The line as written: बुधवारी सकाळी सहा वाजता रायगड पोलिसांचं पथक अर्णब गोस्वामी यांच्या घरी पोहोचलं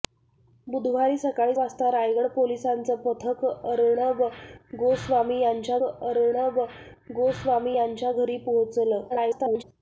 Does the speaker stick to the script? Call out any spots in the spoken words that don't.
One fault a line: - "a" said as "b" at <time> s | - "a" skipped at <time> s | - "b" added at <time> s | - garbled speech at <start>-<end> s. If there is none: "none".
- "सहा" skipped at 1.6 s
- "अर्णब गोस्वामी यांच्या" added at 5.8 s
- garbled speech at 9.1-9.6 s